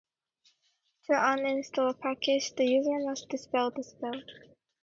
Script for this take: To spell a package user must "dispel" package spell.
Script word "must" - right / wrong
right